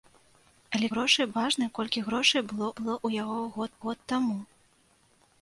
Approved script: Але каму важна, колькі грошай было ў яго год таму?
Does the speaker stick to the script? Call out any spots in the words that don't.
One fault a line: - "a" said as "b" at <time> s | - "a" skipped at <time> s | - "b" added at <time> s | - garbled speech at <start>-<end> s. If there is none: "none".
- "каму" said as "грошай" at 0.9 s
- "было" added at 2.8 s
- "год" added at 3.9 s